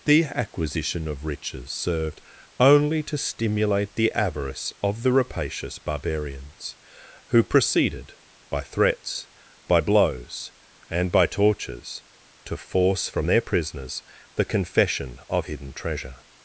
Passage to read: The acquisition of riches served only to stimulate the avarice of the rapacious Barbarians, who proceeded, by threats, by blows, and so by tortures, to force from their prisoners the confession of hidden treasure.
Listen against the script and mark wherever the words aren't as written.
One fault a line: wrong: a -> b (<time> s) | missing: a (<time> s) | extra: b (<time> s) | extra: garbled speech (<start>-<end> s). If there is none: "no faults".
missing: so (11.1 s)